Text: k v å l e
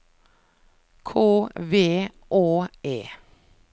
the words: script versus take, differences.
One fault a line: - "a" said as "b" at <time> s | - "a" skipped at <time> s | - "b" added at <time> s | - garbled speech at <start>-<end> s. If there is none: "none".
- "l" skipped at 2.7 s